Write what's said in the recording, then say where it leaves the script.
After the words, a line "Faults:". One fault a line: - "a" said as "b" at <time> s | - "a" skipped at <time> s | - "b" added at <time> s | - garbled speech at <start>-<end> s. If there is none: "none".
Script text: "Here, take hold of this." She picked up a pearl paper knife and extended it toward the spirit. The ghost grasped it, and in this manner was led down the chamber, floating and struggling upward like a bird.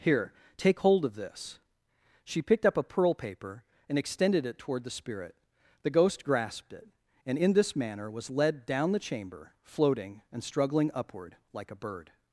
"Here, take hold of this." She picked up a pearl paper and extended it toward the spirit. The ghost grasped it, and in this manner was led down the chamber, floating and struggling upward like a bird.
Faults:
- "knife" skipped at 3.6 s